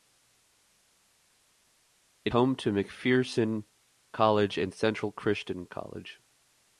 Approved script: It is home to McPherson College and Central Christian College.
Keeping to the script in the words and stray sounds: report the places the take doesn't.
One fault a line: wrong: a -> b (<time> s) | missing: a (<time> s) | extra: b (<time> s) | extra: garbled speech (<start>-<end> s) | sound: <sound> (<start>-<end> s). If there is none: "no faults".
missing: is (2.3 s)